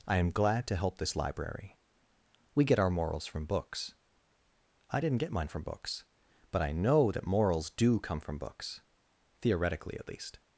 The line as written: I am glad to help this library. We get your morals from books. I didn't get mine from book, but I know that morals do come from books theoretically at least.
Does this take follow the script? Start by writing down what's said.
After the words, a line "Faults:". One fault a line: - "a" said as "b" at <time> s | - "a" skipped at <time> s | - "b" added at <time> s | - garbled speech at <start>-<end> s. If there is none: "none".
I am glad to help this library. We get our morals from books. I didn't get mine from books, but I know that morals do come from books theoretically at least.
Faults:
- "your" said as "our" at 2.8 s
- "book" said as "books" at 5.6 s